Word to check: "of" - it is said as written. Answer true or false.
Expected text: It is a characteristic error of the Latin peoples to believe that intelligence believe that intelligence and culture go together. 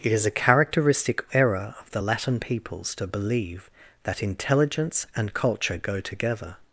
true